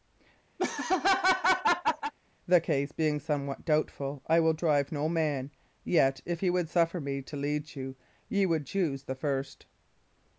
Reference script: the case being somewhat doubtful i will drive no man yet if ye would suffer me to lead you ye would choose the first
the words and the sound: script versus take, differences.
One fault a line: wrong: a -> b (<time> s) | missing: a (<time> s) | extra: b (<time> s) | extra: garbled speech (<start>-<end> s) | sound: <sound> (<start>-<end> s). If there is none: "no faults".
sound: laugh (0.6-2.1 s)